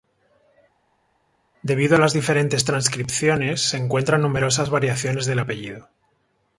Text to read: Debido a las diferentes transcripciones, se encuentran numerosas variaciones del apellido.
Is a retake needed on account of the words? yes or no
no